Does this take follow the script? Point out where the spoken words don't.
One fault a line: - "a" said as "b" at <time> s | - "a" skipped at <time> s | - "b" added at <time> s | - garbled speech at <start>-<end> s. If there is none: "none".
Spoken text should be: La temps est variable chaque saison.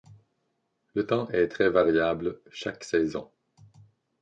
- "La" said as "Le" at 0.9 s
- "très" added at 1.5 s